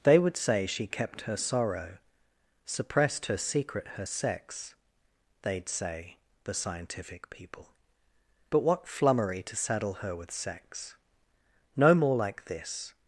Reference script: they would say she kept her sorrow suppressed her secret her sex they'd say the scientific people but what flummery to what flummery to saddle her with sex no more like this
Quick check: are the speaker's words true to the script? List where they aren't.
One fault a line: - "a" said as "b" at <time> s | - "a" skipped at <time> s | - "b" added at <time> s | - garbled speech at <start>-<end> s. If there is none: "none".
- "what flummery to" skipped at 9.6 s